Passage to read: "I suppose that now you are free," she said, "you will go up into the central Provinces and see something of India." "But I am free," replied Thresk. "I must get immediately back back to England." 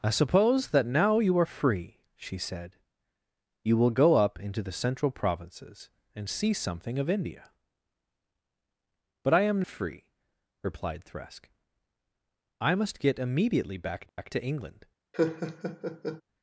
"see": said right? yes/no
yes